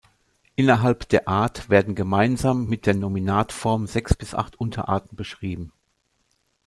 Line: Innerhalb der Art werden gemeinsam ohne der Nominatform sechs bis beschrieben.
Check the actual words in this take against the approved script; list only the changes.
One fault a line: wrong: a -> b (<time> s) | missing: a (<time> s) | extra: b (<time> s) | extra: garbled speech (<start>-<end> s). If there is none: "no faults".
wrong: ohne -> mit (2.7 s)
extra: acht Unterarten (4.3 s)